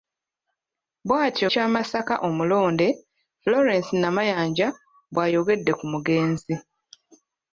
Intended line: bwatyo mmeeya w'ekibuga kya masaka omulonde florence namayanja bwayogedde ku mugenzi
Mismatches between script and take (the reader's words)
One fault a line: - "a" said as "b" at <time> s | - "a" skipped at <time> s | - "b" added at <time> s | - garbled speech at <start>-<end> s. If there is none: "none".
- "mmeeya w'ekibuga" skipped at 1.5 s